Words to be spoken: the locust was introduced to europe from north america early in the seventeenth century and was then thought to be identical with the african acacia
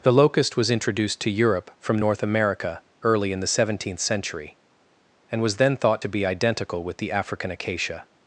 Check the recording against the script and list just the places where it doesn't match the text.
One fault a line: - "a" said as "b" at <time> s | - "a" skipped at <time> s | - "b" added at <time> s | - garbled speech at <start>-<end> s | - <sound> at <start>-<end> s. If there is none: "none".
none